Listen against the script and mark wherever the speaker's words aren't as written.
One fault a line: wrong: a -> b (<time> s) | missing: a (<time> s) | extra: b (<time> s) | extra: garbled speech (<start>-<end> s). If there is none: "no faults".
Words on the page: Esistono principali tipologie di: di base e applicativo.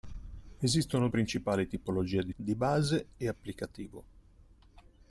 no faults